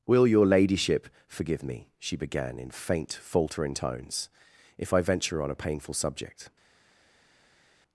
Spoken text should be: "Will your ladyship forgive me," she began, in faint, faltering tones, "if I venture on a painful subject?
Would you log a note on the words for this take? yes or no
no